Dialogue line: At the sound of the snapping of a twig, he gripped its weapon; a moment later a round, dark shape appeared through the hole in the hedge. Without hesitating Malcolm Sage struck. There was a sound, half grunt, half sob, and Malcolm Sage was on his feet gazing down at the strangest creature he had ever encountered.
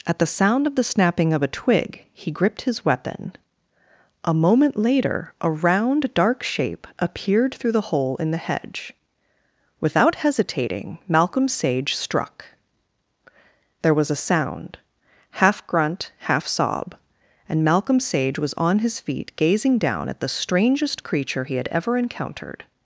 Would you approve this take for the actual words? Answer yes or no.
no